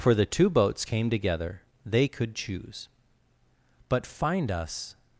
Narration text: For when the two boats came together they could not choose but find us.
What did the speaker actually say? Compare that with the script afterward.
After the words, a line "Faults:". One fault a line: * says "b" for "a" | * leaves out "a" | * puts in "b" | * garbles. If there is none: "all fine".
For the two boats came together they could choose but find us.
Faults:
* leaves out "when"
* leaves out "not"